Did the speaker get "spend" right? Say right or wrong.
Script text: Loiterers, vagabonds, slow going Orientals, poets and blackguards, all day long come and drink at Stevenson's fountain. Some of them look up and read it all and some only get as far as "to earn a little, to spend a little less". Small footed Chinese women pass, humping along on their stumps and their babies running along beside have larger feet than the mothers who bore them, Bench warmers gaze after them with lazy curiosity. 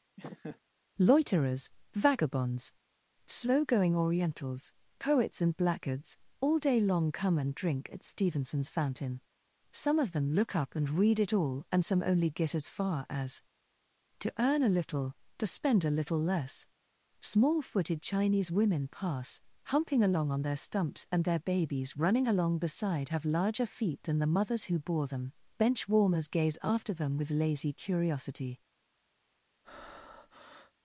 right